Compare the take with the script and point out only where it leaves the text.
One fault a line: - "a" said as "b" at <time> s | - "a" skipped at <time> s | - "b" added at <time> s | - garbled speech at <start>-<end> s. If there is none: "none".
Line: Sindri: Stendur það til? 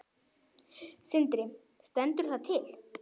none